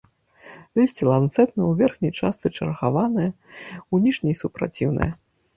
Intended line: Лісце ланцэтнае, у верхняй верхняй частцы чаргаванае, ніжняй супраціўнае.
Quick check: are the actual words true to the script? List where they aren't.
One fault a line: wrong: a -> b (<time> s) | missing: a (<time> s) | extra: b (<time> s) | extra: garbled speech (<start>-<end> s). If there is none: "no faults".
missing: верхняй (2.1 s)
extra: у (3.9 s)